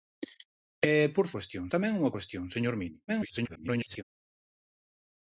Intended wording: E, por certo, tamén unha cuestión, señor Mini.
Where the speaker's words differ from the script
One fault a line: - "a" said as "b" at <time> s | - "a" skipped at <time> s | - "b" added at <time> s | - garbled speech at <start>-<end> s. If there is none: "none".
- "certo" said as "cuestión" at 1.3 s
- garbled speech at 3.1-4.0 s